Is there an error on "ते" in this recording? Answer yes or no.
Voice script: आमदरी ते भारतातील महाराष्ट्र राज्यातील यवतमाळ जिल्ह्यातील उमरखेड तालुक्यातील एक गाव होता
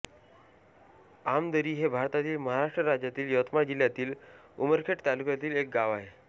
yes